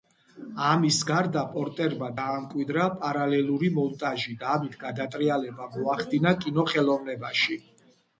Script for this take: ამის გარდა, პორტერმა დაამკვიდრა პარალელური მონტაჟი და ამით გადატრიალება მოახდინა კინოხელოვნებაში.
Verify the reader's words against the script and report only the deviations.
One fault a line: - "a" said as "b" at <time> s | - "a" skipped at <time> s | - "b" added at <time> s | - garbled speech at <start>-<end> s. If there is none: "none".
none